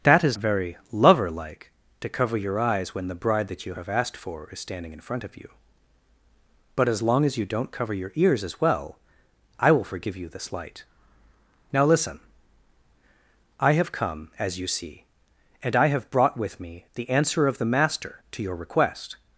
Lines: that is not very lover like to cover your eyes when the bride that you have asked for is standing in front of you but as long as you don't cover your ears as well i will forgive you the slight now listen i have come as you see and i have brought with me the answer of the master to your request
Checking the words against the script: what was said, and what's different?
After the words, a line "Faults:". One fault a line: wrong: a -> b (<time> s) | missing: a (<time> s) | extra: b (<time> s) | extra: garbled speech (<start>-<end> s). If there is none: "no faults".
that is very lover like to cover your eyes when the bride that you have asked for is standing in front of you but as long as you don't cover your ears as well i will forgive you the slight now listen i have come as you see and i have brought with me the answer of the master to your request
Faults:
missing: not (0.4 s)